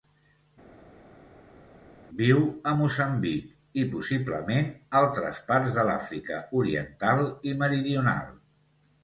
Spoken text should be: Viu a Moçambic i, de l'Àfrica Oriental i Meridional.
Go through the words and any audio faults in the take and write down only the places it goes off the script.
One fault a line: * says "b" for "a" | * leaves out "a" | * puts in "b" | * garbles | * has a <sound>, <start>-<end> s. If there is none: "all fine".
* puts in "possiblement altres parts"